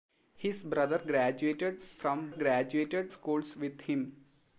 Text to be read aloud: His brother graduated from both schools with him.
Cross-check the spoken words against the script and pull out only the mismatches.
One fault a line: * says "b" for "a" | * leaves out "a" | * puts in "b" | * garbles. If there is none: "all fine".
* says "graduated" for "both"